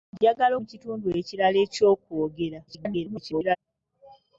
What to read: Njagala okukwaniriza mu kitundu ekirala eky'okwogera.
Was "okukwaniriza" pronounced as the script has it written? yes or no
no